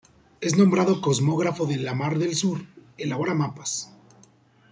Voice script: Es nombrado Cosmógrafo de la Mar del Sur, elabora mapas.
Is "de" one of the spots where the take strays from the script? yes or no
no